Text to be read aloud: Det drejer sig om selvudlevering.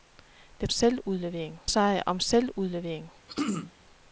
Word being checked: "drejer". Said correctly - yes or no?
no